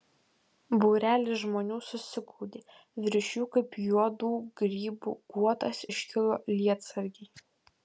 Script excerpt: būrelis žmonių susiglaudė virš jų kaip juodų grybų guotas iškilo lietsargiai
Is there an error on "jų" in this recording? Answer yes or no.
no